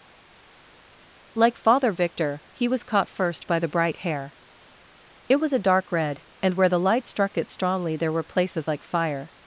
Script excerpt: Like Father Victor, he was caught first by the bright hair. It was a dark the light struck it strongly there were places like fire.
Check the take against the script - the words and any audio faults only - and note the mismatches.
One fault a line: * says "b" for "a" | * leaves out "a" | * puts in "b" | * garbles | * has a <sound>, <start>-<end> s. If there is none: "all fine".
* puts in "red and where"